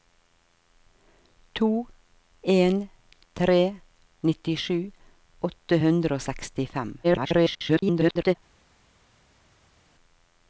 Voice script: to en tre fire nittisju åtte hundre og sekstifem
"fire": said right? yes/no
no